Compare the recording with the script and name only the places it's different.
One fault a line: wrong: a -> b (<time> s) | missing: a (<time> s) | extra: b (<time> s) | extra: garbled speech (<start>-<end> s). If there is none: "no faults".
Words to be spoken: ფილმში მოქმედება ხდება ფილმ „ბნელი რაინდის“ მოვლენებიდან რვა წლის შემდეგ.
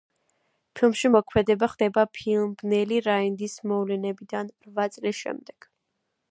no faults